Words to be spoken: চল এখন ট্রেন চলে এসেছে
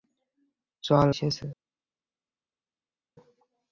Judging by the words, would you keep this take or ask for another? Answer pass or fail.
fail